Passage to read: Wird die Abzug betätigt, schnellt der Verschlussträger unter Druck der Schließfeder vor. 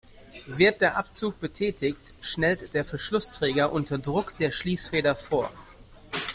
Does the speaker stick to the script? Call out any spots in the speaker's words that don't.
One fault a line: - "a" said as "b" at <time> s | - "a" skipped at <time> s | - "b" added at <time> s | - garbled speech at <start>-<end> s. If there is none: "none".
- "die" said as "der" at 0.8 s